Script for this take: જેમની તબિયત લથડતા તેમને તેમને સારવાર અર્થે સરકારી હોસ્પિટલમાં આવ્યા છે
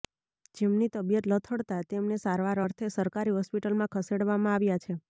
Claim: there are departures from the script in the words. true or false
true